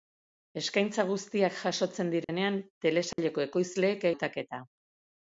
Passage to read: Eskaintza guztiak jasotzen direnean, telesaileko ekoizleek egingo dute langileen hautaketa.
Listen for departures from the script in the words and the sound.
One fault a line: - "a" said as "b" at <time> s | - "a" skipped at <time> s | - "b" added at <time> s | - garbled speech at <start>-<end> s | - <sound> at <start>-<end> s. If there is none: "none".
- dropout at 2.2-2.3 s
- dropout at 3.1-3.2 s
- "egingo dute langileen" skipped at 4.1 s